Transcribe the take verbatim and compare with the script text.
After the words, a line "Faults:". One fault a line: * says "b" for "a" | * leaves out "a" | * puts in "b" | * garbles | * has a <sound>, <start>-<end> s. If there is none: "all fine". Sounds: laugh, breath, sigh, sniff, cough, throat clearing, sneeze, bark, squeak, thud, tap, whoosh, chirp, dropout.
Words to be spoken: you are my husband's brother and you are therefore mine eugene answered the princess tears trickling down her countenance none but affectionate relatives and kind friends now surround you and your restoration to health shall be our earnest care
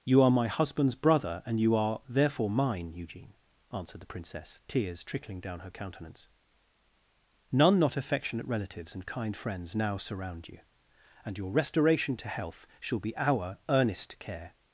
you are my husband's brother and you are therefore mine eugene answered the princess tears trickling down her countenance none not affectionate relatives and kind friends now surround you and your restoration to health shall be our earnest care
Faults:
* says "not" for "but"